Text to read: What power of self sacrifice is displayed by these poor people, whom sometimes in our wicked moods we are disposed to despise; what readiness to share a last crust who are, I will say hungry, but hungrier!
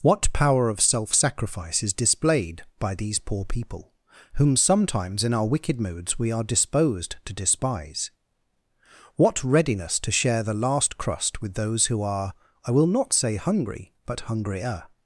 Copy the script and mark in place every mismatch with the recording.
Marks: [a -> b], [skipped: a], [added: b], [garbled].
What power of self sacrifice is displayed by these poor people, whom sometimes in our wicked moods we are disposed to despise; what readiness to share [a -> the] last crust [added: with those] who are, I will [added: not] say hungry, but hungrier!